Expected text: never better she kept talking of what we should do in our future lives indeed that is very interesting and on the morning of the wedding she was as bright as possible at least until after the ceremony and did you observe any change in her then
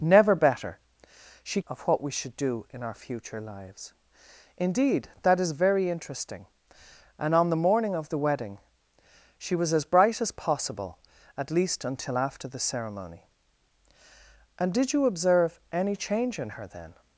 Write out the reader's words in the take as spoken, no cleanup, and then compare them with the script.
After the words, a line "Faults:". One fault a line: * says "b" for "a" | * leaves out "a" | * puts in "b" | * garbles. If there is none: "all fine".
never better she of what we should do in our future lives indeed that is very interesting and on the morning of the wedding she was as bright as possible at least until after the ceremony and did you observe any change in her then
Faults:
* leaves out "kept talking"